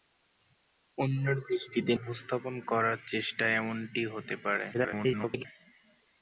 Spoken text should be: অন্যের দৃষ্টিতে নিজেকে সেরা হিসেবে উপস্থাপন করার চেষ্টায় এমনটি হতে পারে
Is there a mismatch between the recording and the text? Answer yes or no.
yes